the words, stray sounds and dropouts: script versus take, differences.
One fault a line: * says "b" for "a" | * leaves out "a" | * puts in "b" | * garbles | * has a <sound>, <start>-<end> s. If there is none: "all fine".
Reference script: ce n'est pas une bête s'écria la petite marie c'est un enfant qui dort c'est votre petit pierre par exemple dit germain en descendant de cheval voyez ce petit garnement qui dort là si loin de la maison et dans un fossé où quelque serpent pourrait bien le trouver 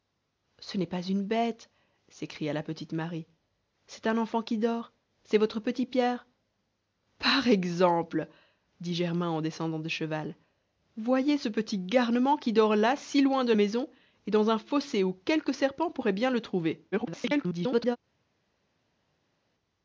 * leaves out "la"
* garbles